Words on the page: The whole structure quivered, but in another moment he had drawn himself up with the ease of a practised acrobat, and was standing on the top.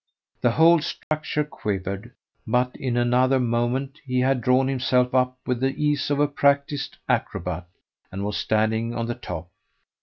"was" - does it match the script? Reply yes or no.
yes